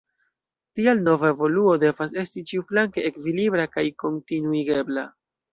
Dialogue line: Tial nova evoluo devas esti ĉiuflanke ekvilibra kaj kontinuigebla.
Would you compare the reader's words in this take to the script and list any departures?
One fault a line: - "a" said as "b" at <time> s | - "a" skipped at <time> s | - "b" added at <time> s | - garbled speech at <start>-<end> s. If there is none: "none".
none